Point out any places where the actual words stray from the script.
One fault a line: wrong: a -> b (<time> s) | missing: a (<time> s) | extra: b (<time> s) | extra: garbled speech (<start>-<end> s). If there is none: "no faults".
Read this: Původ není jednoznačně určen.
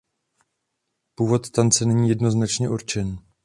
extra: tance (1.5 s)